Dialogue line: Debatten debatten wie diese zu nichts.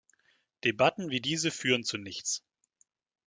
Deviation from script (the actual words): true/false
true